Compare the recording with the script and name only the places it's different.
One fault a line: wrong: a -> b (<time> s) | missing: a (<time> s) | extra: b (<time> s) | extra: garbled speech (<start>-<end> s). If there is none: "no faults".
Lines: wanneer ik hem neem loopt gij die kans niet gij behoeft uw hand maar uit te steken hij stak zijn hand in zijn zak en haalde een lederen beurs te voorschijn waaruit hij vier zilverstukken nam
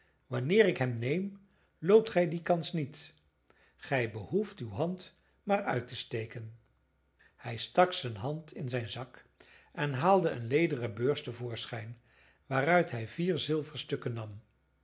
no faults